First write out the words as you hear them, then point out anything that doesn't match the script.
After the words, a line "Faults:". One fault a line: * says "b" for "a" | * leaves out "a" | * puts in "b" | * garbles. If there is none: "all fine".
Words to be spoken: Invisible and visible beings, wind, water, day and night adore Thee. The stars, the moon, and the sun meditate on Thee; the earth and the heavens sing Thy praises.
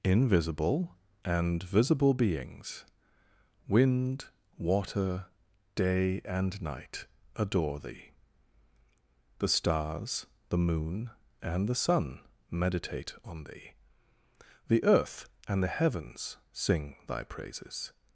Invisible and visible beings, wind, water, day and night adore Thee. The stars, the moon, and the sun meditate on Thee; the earth and the heavens sing Thy praises.
Faults:
all fine